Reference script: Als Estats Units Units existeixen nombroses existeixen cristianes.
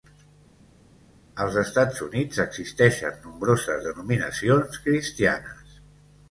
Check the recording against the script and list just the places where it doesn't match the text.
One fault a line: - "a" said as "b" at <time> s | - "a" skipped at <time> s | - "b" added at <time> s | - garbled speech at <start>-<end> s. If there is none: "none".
- "Units" skipped at 2.4 s
- "existeixen" said as "denominacions" at 3.9 s